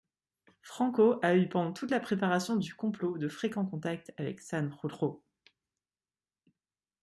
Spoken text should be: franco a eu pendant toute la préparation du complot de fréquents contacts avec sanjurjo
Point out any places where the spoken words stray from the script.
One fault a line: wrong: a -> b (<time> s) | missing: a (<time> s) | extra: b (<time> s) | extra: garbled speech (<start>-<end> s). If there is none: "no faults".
no faults